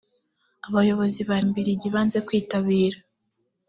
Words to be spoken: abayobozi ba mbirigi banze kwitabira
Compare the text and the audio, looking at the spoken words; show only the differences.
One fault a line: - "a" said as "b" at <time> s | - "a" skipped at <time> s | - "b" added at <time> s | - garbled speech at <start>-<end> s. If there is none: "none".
none